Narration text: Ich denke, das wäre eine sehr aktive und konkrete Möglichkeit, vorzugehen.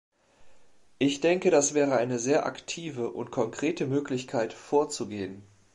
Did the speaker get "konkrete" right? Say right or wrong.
right